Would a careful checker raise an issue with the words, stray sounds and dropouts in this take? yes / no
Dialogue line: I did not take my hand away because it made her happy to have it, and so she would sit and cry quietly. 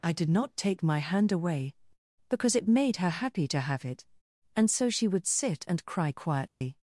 yes